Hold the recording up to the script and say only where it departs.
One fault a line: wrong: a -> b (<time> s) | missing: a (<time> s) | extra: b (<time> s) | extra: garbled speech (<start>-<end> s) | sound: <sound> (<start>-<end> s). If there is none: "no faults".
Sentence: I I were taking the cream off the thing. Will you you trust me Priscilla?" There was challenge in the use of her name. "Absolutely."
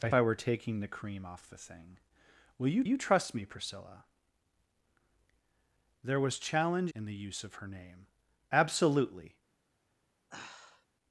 sound: sigh (10.3-10.9 s)